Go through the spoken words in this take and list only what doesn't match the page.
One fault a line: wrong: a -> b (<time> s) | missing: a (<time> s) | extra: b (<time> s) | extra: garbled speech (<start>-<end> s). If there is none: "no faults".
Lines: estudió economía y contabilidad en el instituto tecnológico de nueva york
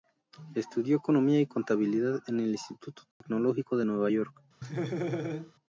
no faults